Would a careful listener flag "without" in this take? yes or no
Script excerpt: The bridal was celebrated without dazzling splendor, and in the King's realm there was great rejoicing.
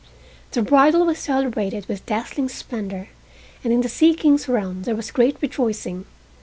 yes